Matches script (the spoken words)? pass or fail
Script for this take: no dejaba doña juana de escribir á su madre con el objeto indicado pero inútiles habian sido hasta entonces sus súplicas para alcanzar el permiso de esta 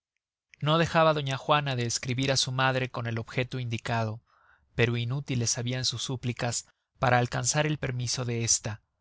fail